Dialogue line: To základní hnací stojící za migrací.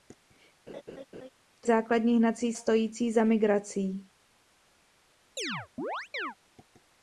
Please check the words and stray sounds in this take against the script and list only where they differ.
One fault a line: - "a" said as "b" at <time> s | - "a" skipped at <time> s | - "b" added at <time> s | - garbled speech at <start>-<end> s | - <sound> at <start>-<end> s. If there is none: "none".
- laugh at 0.7-1.3 s
- chirp at 5.4-6.4 s